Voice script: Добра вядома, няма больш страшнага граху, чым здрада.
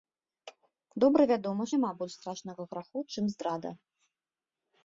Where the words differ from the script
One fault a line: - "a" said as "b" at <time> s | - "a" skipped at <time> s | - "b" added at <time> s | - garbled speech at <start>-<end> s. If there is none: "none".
none